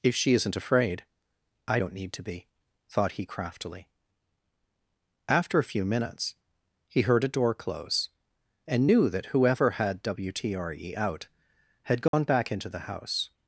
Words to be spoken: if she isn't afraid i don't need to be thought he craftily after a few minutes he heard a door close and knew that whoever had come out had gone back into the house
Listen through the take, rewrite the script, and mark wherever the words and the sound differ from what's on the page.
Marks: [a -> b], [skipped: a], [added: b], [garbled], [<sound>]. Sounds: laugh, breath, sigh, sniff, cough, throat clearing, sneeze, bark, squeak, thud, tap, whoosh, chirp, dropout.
if she isn't afraid i don't need to be thought he craftily after a few minutes he heard a door close and knew that whoever had [come -> wtre] out had gone [dropout] back into the house